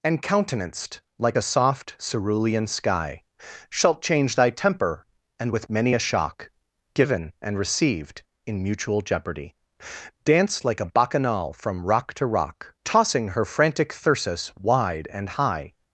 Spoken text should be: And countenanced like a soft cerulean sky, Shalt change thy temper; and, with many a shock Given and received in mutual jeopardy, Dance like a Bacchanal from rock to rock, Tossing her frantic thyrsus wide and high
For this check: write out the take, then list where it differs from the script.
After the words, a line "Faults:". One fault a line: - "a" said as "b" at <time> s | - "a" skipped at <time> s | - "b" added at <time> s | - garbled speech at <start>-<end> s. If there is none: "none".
And countenanced like a soft cerulean sky, Shalt change thy temper; and, with many a shock Given and received in mutual jeopardy, Dance like a Bacchanal from rock to rock, Tossing her frantic thyrsus wide and high
Faults:
none